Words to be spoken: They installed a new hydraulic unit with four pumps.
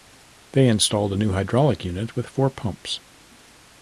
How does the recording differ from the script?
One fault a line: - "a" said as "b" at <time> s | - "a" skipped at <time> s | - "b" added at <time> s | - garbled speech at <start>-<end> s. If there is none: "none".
none